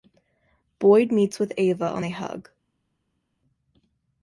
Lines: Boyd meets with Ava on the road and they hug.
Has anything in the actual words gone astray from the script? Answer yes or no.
yes